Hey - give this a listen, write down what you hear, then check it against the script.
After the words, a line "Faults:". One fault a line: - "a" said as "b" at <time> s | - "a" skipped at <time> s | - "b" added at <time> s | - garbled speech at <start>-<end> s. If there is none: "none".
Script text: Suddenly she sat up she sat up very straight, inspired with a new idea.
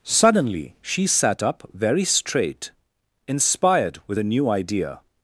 Suddenly she sat up very straight, inspired with a new idea.
Faults:
- "she sat up" skipped at 1.7 s